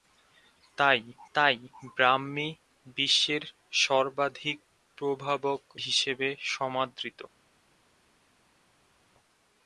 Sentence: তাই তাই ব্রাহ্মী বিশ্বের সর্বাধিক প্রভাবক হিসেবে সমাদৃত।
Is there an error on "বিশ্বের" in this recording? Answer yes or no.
no